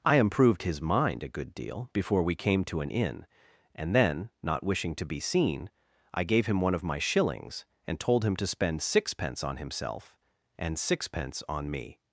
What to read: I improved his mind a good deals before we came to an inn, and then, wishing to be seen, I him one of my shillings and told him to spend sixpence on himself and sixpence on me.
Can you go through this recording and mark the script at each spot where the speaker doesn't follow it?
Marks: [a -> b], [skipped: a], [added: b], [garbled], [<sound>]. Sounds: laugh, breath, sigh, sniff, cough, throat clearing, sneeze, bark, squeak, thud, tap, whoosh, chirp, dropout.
I improved his mind a good [deals -> deal] before we came to an inn, and then, [added: not] wishing to be seen, I [added: gave] him one of my shillings and told him to spend sixpence on himself and sixpence on me.